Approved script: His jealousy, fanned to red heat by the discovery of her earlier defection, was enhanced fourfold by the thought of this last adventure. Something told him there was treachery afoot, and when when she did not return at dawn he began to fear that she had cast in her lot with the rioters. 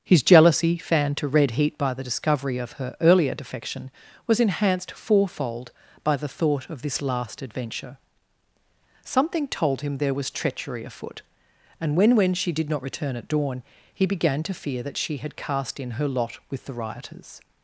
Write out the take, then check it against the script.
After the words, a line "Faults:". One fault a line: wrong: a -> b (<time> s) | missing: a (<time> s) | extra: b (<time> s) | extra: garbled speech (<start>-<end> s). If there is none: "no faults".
His jealousy, fanned to red heat by the discovery of her earlier defection, was enhanced fourfold by the thought of this last adventure. Something told him there was treachery afoot, and when when she did not return at dawn he began to fear that she had cast in her lot with the rioters.
Faults:
no faults